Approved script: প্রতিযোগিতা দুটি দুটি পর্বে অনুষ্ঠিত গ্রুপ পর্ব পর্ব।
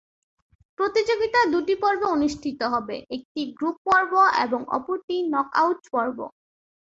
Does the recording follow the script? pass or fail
fail